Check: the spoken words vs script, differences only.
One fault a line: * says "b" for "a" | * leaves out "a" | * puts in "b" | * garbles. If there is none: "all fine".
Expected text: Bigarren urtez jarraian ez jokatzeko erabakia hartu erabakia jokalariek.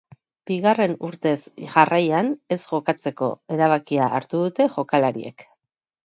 * says "dute" for "erabakia"